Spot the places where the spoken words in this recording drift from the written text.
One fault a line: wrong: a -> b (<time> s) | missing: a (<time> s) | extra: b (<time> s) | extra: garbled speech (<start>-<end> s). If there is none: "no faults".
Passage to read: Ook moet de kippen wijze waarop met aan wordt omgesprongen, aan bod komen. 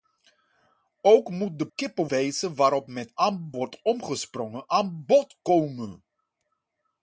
no faults